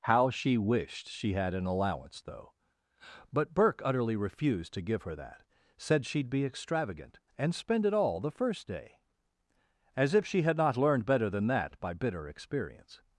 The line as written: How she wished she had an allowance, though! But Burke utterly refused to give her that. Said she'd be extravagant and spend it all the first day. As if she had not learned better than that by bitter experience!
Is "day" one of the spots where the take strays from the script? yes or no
no